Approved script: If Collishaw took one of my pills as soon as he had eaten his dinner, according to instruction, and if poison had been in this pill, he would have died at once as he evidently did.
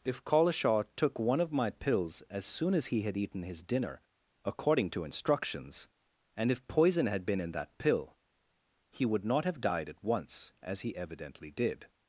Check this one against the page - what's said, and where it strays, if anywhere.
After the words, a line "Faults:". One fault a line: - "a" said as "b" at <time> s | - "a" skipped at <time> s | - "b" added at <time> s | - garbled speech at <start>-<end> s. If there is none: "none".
If Collishaw took one of my pills as soon as he had eaten his dinner, according to instructions, and if poison had been in that pill, he would not have died at once as he evidently did.
Faults:
- "instruction" said as "instructions" at 5.0 s
- "this" said as "that" at 7.5 s
- "not" added at 9.3 s